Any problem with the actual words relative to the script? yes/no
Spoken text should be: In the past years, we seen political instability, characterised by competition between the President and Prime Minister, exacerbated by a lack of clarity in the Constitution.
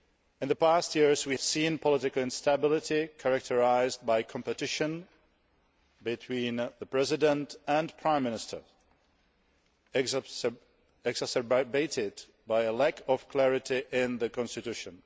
no